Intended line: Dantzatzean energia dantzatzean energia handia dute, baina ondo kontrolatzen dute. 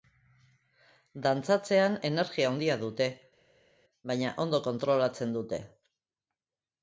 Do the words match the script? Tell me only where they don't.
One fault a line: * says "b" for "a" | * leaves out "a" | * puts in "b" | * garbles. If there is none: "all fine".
* leaves out "dantzatzean energia"